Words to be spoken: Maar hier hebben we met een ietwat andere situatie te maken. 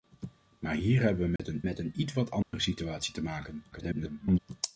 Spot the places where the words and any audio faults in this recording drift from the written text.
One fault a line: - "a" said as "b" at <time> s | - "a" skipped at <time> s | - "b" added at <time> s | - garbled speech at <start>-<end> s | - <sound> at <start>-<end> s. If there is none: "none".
- dropout at 1.4-1.4 s
- "met een" added at 1.6 s
- dropout at 2.4-2.5 s
- garbled speech at 3.7-4.4 s